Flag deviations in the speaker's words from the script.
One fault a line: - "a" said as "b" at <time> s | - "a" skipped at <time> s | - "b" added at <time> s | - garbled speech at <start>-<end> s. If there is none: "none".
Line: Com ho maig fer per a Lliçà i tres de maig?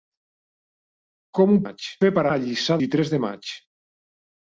none